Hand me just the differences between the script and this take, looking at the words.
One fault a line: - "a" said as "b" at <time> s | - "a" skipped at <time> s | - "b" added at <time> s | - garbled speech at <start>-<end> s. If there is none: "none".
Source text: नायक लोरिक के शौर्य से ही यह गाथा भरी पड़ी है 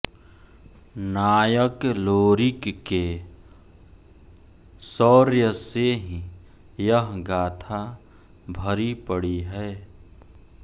none